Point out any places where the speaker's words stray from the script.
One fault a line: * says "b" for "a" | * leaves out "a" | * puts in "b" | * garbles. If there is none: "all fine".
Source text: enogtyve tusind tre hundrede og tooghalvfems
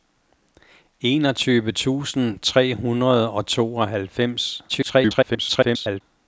* garbles